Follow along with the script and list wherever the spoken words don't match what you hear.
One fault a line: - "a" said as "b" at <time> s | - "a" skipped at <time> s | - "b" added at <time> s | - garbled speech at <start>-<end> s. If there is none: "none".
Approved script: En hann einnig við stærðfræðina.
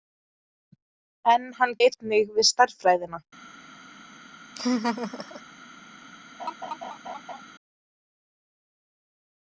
none